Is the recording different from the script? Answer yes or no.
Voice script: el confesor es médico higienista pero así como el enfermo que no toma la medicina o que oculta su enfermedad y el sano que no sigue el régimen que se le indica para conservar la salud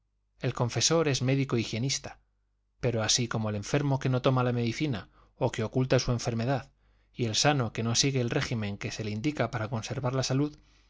no